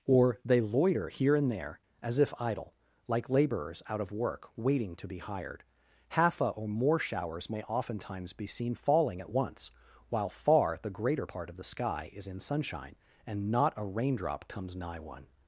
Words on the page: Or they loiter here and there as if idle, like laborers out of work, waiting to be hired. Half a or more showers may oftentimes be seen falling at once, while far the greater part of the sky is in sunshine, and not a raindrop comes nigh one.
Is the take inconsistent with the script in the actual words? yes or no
no